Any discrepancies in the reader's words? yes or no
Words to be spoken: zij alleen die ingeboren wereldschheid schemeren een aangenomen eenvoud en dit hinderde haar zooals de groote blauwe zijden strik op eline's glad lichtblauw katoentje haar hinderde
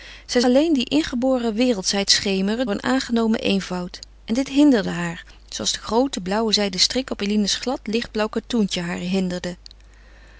no